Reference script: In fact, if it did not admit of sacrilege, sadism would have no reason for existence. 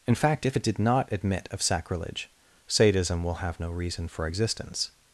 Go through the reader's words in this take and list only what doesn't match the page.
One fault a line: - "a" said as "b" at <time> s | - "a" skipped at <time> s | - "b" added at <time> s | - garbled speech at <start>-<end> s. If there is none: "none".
- "would" said as "will" at 3.2 s